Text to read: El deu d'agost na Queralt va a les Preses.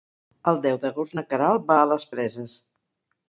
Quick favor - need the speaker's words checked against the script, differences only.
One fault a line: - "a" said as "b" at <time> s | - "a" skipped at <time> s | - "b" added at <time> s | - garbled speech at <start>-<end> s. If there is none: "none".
none